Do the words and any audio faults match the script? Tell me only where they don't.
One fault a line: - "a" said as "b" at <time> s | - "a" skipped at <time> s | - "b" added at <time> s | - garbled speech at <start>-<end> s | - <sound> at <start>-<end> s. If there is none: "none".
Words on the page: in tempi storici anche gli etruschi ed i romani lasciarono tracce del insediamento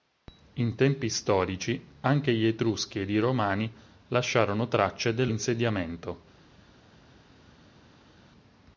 none